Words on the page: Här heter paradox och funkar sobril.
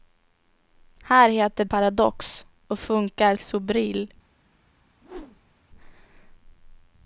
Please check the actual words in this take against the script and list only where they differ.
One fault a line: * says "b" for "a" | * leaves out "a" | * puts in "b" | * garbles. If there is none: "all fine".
all fine